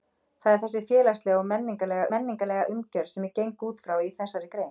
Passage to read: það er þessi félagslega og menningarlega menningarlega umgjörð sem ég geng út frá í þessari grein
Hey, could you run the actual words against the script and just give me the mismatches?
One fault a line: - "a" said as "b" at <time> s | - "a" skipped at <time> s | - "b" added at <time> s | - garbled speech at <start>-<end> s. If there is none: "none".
none